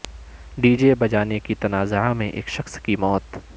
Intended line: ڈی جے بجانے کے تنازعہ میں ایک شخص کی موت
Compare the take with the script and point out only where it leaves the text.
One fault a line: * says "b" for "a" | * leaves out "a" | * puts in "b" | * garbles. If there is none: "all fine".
all fine